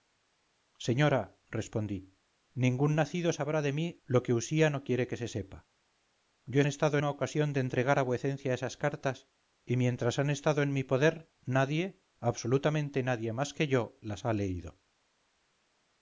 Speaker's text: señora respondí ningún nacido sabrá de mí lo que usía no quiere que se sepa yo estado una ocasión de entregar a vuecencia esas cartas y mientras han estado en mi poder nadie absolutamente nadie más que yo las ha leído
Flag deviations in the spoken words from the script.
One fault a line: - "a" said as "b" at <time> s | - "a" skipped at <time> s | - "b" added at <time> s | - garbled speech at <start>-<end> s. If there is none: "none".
none